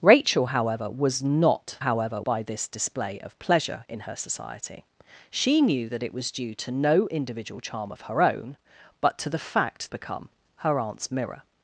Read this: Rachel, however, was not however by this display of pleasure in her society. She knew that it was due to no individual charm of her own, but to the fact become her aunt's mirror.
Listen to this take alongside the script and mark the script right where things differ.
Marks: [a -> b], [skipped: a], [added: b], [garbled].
Rachel, however, was not however by this display of pleasure in her society. She knew that it was due to no individual charm of her own, but to the fact become her aunt's mirror.